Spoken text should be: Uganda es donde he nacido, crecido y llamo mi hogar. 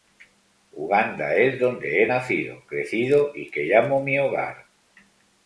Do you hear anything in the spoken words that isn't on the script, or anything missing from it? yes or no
yes